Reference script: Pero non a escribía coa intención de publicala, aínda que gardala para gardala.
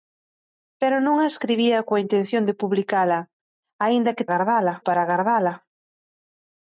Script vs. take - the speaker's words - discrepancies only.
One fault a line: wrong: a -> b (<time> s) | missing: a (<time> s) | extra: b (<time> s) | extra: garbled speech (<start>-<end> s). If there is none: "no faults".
no faults